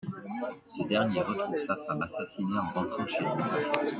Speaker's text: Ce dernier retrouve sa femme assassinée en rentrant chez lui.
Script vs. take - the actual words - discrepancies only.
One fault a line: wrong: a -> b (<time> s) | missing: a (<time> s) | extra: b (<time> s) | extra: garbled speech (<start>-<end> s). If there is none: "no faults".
no faults